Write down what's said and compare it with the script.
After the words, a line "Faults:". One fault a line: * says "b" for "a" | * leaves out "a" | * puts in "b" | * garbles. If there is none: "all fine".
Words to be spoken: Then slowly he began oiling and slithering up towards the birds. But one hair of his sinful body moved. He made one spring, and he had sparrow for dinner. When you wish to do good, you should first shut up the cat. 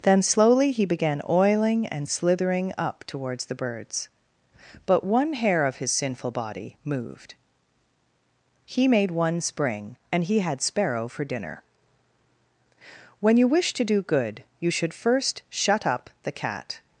Then slowly he began oiling and slithering up towards the birds. But one hair of his sinful body moved. He made one spring, and he had sparrow for dinner. When you wish to do good, you should first shut up the cat.
Faults:
all fine